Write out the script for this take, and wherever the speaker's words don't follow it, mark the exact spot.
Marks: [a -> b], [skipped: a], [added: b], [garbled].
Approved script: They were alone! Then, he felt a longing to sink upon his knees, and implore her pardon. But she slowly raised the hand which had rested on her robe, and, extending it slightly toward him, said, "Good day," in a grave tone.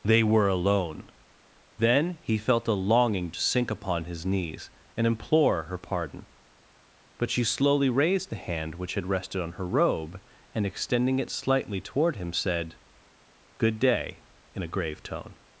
They were alone! Then, he felt a longing to sink upon his knees, and implore her pardon. But she slowly raised the hand which had rested on her robe, and, extending it slightly toward him, said, "Good day," in a grave tone.